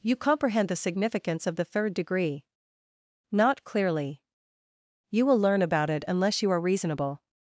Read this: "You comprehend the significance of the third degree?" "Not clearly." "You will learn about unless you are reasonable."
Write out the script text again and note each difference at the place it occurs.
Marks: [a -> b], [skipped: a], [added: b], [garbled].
"You comprehend the significance of the third degree?" "Not clearly." "You will learn about [added: it] unless you are reasonable."